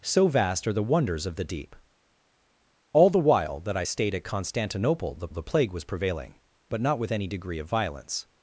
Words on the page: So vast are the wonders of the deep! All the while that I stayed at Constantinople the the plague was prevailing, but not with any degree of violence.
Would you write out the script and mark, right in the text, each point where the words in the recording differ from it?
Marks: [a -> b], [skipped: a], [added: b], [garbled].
So vast are the wonders of the deep! All the while that I stayed at Constantinople the the plague was prevailing, but not with any degree of violence.